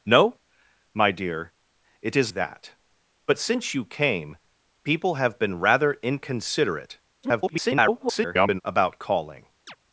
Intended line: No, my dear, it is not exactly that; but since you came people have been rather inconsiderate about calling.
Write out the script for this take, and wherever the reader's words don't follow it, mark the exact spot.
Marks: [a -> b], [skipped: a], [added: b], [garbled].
No, my dear, it is [skipped: not exactly] that; but since you came people have been rather inconsiderate [garbled] about calling.